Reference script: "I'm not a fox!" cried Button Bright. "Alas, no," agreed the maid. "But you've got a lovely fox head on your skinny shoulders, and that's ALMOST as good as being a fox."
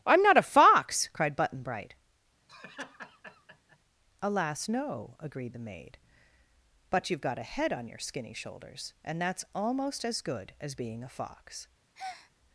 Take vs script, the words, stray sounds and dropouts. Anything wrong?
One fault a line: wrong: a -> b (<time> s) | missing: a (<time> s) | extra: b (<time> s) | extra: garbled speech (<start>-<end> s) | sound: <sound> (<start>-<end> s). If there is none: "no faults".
sound: laugh (2.5-3.8 s)
missing: lovely fox (7.4 s)
sound: breath (11.9-12.3 s)